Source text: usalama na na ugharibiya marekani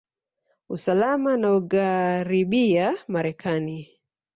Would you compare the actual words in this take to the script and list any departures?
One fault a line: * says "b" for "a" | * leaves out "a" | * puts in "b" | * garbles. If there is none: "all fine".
* leaves out "na"